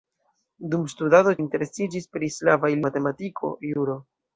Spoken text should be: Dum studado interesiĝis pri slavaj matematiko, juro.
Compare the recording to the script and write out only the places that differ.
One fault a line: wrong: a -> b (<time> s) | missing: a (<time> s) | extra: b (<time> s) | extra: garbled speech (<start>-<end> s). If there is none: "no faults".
no faults